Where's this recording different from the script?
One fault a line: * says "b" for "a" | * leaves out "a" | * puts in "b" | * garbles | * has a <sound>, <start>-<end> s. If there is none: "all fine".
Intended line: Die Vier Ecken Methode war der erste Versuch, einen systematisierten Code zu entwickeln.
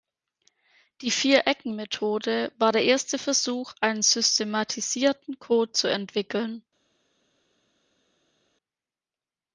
all fine